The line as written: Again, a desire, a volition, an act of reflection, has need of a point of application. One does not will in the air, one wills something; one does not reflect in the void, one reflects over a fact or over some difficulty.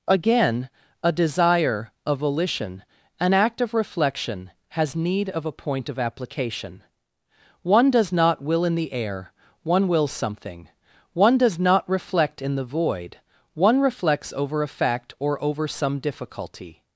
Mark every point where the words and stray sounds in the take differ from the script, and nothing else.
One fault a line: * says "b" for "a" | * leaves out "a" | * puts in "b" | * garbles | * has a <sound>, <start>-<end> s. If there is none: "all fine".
all fine